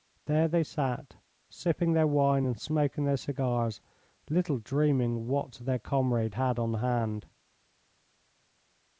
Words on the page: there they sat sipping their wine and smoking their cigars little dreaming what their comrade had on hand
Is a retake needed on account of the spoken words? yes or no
no